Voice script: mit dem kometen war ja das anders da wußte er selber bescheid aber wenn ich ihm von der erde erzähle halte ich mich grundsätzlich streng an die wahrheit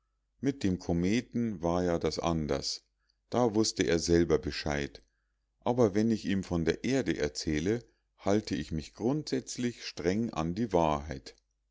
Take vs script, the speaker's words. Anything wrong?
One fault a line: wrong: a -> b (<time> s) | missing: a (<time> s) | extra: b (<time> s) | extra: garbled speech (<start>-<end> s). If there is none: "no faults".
no faults